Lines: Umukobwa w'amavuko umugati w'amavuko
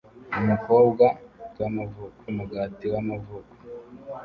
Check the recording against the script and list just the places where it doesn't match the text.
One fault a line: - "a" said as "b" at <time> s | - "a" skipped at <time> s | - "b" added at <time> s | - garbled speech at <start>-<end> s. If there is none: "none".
none